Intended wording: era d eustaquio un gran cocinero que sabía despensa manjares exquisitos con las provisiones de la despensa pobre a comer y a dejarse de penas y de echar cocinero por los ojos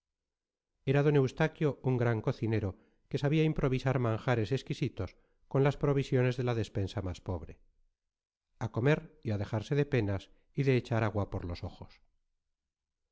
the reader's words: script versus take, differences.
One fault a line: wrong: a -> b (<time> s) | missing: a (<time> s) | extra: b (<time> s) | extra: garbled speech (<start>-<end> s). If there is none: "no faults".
wrong: despensa -> improvisar (3.5 s)
extra: más (7.1 s)
wrong: cocinero -> agua (11.0 s)